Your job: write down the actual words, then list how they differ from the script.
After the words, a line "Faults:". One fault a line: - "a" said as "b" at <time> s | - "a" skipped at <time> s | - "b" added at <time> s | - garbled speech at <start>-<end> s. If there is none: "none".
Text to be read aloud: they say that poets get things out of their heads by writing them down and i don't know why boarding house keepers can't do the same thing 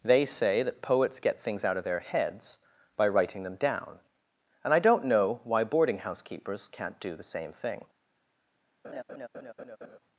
they say that poets get things out of their heads by writing them down and i don't know why boarding house keepers can't do the same thing
Faults:
none